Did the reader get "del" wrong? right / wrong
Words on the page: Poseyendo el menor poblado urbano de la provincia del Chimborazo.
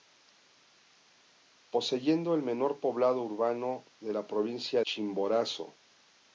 wrong